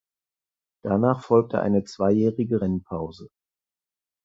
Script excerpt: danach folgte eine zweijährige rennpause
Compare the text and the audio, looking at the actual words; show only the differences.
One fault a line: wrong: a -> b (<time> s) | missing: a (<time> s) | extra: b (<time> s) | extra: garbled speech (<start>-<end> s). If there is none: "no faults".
no faults